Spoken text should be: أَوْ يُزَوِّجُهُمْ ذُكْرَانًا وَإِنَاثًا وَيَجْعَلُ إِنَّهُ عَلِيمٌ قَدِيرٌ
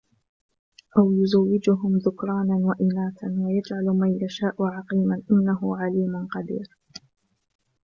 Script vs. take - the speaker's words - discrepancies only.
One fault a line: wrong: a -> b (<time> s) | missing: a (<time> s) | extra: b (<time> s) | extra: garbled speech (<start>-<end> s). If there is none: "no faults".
extra: مَنْ يَشَاءُ عَقِيمًا (3.9 s)